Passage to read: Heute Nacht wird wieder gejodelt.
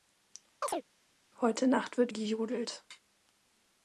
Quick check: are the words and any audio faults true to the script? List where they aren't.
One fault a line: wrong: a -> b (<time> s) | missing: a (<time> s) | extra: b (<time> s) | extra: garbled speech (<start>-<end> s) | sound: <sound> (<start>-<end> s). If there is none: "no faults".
sound: chirp (0.6-0.8 s)
missing: wieder (2.1 s)